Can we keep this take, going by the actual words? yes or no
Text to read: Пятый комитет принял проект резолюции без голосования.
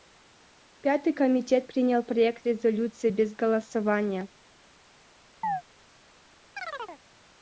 yes